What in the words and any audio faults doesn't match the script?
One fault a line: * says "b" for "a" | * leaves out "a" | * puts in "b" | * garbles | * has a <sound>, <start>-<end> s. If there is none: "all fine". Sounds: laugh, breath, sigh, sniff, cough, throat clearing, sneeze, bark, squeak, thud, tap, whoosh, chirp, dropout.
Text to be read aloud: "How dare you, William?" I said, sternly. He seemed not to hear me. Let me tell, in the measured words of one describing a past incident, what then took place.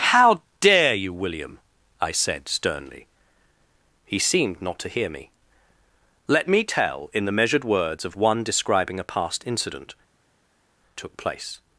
* leaves out "what then"